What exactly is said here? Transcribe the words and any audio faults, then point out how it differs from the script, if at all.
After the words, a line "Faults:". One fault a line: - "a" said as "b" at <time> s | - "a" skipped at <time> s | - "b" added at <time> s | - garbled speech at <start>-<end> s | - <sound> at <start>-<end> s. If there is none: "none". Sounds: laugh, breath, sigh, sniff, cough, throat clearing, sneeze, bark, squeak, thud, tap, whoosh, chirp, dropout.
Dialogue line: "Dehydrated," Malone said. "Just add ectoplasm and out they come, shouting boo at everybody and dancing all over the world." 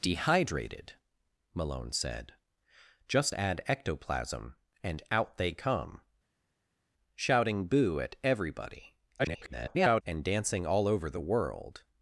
"Dehydrated," Malone said. "Just add ectoplasm and out they come, shouting boo at everybody [garbled] and dancing all over the world."
Faults:
- garbled speech at 9.2-10.0 s